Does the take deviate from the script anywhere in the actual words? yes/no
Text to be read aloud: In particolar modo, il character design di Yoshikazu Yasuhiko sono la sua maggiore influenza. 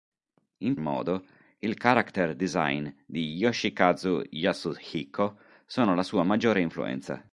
yes